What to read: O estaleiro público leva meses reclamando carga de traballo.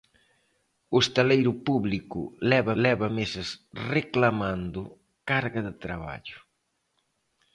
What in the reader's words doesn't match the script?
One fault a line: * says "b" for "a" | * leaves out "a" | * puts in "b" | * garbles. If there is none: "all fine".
* puts in "leva"